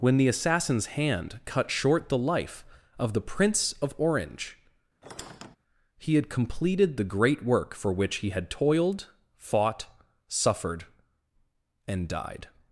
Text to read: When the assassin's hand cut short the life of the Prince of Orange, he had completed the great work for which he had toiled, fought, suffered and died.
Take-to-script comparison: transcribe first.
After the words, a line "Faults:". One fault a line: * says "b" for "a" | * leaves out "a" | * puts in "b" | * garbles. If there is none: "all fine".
When the assassin's hand cut short the life of the Prince of Orange, he had completed the great work for which he had toiled, fought, suffered and died.
Faults:
all fine